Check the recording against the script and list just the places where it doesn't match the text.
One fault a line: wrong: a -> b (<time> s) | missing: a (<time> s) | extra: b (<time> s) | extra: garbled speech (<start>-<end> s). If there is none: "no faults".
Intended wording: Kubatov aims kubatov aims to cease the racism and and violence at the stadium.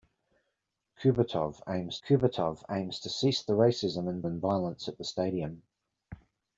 no faults